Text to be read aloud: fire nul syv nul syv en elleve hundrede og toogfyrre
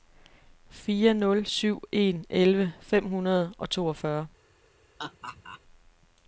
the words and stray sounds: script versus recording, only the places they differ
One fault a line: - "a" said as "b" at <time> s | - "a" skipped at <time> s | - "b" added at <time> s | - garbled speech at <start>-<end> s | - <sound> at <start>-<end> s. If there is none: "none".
- "nul syv" skipped at 1.8 s
- "fem" added at 2.8 s
- laugh at 5.0-5.6 s